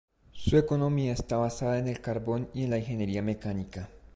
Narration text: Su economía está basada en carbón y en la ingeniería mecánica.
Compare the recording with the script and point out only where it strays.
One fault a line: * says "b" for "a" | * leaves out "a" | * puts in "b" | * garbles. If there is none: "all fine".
* puts in "el"